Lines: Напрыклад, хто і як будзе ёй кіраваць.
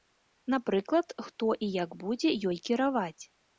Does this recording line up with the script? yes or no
yes